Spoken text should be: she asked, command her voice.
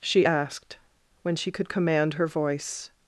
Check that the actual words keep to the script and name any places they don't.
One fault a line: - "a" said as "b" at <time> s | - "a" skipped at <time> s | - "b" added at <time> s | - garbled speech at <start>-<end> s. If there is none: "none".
- "when she could" added at 1.2 s